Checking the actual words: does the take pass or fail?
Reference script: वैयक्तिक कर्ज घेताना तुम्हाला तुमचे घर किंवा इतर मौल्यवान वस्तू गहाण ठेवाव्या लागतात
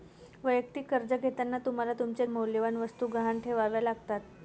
fail